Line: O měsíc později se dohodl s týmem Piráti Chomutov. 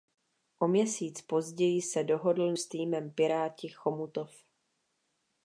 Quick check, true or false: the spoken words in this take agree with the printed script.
true